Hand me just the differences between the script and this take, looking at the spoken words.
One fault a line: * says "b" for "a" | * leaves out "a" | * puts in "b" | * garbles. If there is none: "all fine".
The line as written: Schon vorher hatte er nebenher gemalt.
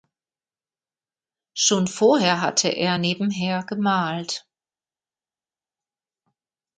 all fine